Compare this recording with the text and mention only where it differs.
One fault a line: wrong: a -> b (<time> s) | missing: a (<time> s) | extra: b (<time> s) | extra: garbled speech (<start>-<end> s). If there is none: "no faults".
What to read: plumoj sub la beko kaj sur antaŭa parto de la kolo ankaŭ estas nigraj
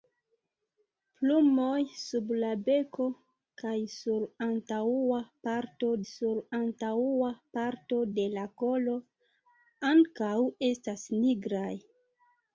extra: sur antaŭa parto (6.1 s)